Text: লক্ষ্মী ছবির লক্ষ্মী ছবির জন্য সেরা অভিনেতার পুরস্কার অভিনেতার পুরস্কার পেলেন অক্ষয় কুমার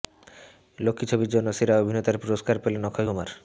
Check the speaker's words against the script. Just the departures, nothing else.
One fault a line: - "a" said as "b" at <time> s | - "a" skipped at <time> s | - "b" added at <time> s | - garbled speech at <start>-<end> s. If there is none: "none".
- "লক্ষ্মী ছবির" skipped at 1.3 s
- "অভিনেতার পুরস্কার" skipped at 2.5 s